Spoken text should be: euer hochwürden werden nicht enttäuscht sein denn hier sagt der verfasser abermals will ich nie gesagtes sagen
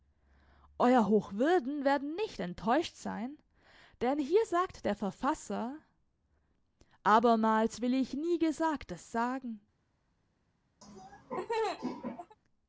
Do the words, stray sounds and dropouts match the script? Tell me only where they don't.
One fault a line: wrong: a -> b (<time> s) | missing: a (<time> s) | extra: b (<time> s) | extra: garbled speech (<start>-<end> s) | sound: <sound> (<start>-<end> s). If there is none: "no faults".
sound: laugh (10.8-12.4 s)